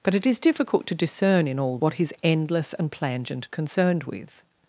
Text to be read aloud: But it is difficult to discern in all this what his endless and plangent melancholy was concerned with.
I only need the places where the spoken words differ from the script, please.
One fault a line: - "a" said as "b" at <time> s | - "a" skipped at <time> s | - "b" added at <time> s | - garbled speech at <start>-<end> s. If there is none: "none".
- "this" skipped at 1.8 s
- "melancholy was" skipped at 3.5 s